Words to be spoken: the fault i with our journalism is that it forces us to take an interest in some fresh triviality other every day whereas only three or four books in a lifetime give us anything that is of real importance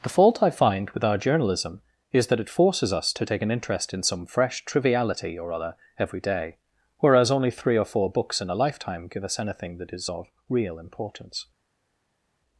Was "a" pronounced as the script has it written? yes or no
yes